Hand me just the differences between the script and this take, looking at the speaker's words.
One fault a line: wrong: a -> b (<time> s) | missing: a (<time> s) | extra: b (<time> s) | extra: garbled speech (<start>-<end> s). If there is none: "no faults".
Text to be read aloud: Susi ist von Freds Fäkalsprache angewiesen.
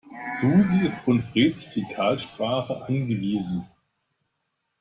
no faults